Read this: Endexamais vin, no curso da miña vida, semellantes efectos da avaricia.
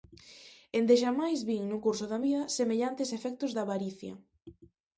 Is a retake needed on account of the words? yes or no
yes